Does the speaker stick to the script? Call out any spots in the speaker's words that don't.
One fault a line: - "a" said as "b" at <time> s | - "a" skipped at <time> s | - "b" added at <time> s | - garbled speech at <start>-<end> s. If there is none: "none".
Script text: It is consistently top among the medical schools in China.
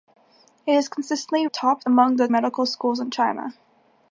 none